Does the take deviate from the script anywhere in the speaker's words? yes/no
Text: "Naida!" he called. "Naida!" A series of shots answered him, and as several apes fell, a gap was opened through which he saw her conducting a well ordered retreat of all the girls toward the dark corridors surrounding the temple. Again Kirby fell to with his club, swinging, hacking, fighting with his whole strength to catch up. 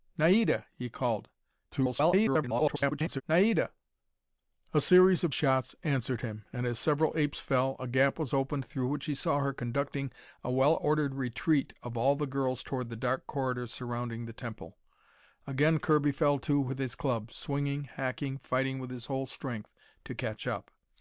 yes